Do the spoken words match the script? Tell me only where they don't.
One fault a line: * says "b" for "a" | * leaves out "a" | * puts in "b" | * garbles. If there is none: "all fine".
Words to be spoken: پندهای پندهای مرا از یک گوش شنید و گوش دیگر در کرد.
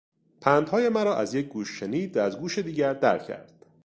* leaves out "پندهای"
* puts in "از"